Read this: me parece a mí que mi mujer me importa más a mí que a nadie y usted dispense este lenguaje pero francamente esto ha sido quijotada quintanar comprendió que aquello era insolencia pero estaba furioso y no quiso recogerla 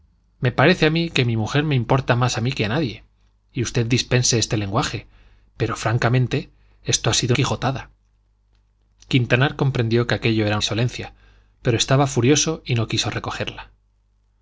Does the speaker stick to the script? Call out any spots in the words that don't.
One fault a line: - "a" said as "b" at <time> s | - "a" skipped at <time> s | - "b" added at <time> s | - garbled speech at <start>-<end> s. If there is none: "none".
none